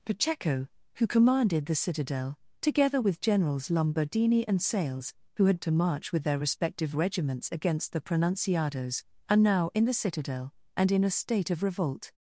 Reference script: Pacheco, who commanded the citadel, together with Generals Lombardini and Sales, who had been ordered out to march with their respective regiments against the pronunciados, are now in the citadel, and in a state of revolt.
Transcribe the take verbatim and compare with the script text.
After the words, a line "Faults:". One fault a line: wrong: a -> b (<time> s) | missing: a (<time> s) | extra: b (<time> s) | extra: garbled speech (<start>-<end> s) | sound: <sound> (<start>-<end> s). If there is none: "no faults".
Pacheco, who commanded the citadel, together with Generals Lombardini and Sales, who had to march with their respective regiments against the pronunciados, are now in the citadel, and in a state of revolt.
Faults:
missing: been ordered out (5.6 s)